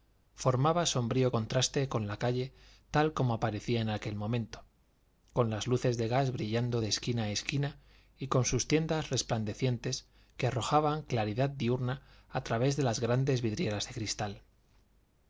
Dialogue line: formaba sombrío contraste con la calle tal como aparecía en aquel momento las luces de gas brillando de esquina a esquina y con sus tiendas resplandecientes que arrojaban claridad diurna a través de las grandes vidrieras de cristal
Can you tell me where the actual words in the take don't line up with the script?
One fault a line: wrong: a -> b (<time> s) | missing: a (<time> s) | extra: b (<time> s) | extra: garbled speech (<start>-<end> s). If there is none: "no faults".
extra: con (5.3 s)